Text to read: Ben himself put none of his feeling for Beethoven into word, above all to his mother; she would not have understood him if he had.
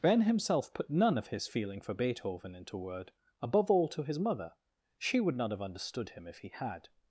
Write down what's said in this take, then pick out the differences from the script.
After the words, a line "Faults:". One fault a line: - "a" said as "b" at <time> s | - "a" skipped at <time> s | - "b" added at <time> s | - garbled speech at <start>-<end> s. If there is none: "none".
Ben himself put none of his feeling for Beethoven into word, above all to his mother; she would not have understood him if he had.
Faults:
none